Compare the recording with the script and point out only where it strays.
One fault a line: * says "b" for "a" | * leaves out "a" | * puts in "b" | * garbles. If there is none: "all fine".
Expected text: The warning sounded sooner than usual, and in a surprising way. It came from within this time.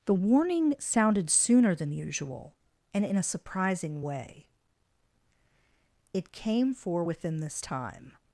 * says "for" for "from"